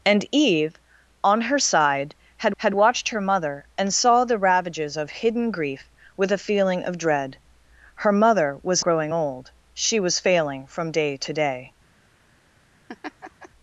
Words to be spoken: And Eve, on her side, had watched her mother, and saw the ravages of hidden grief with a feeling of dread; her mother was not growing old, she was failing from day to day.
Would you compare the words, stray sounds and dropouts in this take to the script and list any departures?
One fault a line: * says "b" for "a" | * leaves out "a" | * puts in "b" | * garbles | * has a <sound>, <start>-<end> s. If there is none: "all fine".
* puts in "had"
* leaves out "not"
* has a laugh, 12.9-13.5 s